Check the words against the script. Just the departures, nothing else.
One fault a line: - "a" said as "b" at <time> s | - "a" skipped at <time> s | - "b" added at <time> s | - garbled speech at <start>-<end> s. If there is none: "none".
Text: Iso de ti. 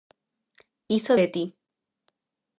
none